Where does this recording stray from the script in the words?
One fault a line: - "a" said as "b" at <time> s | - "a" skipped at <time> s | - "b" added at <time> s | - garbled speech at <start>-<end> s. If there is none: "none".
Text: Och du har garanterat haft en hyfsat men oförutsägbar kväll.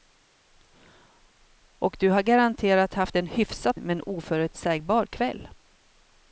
none